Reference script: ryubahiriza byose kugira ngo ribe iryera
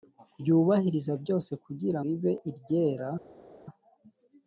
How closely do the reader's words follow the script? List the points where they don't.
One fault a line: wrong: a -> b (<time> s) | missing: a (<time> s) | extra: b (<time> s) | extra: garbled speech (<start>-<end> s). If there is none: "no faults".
missing: ngo (2.0 s)